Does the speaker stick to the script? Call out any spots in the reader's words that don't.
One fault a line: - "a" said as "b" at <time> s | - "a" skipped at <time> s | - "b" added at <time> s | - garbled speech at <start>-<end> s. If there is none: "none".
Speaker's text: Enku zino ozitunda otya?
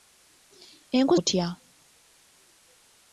- "zino ozitunda" skipped at 1.1 s